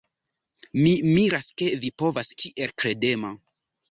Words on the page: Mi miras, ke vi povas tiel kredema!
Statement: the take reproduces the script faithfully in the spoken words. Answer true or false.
true